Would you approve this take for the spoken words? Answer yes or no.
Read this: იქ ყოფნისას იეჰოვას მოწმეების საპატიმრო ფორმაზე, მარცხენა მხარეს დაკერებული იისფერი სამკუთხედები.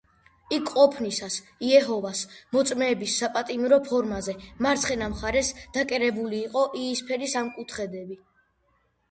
no